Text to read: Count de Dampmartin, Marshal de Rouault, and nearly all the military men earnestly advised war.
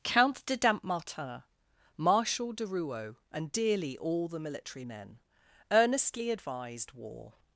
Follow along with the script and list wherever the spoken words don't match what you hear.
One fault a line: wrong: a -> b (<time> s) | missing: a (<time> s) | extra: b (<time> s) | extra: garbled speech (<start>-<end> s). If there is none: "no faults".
wrong: nearly -> dearly (3.5 s)